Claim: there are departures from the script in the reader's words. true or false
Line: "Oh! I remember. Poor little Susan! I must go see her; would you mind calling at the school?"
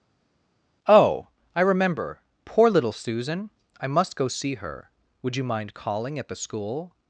false